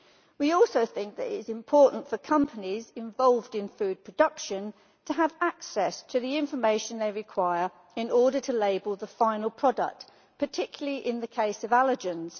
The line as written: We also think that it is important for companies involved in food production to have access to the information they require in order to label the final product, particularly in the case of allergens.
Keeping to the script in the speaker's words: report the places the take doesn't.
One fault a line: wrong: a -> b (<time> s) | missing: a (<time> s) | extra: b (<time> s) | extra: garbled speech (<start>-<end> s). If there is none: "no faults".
no faults